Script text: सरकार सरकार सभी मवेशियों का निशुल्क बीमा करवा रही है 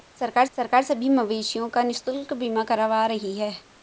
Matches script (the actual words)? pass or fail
pass